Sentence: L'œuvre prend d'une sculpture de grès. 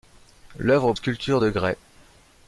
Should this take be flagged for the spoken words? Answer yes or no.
yes